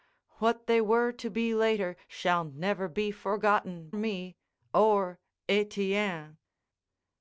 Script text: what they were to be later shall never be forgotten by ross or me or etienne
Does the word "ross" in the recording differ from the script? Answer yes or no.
yes